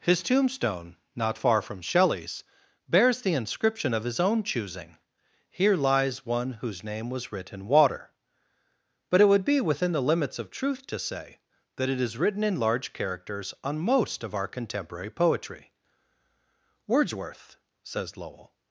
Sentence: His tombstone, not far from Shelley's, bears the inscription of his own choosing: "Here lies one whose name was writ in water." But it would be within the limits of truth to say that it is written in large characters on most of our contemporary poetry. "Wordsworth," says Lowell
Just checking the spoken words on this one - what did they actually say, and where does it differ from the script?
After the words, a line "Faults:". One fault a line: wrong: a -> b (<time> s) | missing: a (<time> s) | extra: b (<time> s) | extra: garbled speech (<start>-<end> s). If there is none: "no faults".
His tombstone, not far from Shelley's, bears the inscription of his own choosing: "Here lies one whose name was writ in water." But it would be within the limits of truth to say that it is written in large characters on most of our contemporary poetry. "Wordsworth," says Lowell
Faults:
no faults